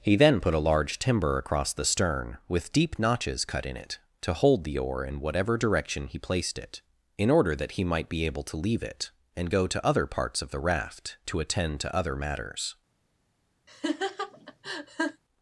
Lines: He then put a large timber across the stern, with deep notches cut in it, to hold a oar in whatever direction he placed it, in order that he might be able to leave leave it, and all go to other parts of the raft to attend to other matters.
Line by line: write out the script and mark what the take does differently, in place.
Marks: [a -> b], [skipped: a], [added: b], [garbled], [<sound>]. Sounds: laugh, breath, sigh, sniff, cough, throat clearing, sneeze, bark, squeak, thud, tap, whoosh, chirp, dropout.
He then put a large timber across the stern, with deep notches cut in it, to hold [a -> the] oar in whatever direction he placed it, in order that he might be able to leave [skipped: leave] it, and [skipped: all] go to other parts of the raft to attend to other matters. [laugh]